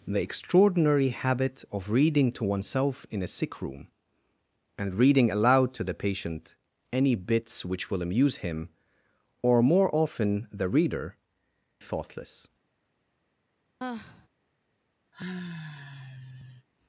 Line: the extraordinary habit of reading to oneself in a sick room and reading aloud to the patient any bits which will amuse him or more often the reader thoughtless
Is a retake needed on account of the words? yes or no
no